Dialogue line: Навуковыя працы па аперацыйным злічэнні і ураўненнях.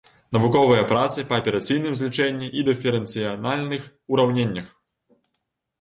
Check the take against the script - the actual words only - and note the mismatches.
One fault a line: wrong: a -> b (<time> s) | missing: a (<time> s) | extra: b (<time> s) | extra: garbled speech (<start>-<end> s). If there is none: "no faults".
extra: дыферэнцыяльных (2.7 s)